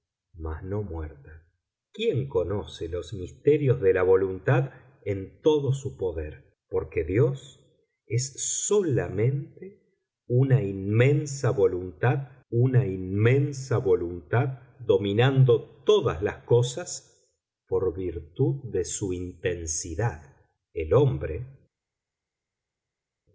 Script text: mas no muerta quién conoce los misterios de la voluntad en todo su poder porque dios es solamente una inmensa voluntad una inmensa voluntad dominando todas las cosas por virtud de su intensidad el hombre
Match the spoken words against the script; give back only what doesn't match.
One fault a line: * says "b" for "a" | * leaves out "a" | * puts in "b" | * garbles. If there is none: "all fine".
all fine